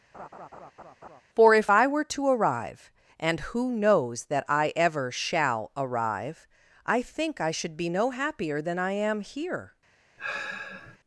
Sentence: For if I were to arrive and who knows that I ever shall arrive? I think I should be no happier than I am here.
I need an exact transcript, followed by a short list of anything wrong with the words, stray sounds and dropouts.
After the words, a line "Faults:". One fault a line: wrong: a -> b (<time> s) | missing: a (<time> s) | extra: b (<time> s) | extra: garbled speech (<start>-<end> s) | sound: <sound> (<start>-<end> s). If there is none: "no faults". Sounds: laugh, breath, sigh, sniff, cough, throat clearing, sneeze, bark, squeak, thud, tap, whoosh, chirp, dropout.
For if I were to arrive and who knows that I ever shall arrive? I think I should be no happier than I am here.
Faults:
sound: laugh (0.1-1.2 s)
sound: sigh (10.2-11.0 s)